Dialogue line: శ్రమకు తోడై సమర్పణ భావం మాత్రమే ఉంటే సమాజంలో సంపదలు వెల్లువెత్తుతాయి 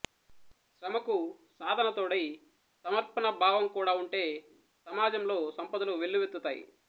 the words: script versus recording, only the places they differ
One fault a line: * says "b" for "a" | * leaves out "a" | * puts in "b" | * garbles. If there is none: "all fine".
* puts in "సాధన"
* says "కూడా" for "మాత్రమే"